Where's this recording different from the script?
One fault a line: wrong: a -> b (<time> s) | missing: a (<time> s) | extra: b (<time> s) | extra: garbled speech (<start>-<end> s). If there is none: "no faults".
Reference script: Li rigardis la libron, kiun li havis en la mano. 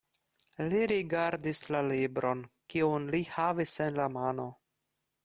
no faults